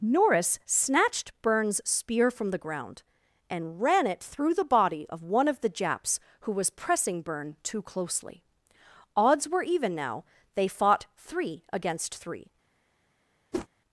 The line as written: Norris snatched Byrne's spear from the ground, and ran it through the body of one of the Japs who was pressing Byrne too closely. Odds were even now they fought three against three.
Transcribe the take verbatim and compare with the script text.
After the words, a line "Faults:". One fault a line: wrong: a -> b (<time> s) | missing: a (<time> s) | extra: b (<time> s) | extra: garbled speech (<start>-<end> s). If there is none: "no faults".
Norris snatched Byrne's spear from the ground, and ran it through the body of one of the Japs who was pressing Byrne too closely. Odds were even now they fought three against three.
Faults:
no faults